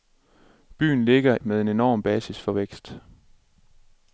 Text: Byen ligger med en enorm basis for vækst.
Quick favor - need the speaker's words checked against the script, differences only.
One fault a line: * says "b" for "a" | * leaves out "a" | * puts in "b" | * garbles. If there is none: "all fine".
all fine